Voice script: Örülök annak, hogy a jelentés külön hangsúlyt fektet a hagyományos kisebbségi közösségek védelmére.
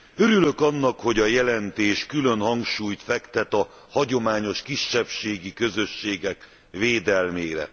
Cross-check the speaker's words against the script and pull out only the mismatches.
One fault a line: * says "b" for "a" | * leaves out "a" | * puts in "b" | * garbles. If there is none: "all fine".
all fine